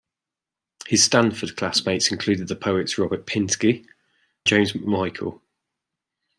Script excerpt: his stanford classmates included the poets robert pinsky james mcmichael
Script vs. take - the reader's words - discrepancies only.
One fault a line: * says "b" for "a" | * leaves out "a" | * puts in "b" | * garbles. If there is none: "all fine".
all fine